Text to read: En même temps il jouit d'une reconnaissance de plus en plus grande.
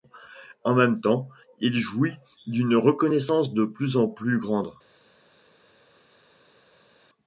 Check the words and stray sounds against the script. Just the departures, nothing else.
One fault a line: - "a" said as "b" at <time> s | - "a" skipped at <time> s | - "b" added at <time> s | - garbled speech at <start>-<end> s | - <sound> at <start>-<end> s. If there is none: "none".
none